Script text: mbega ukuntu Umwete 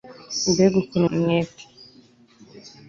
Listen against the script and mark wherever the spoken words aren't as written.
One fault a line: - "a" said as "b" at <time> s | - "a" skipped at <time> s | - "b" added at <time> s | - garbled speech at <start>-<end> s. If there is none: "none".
none